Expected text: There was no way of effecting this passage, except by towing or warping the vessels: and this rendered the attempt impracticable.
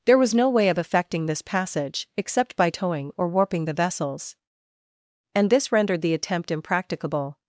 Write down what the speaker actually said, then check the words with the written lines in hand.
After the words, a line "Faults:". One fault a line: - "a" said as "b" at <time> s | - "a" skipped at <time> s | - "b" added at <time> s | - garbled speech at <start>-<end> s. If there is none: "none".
There was no way of effecting this passage, except by towing or warping the vessels: and this rendered the attempt impracticable.
Faults:
none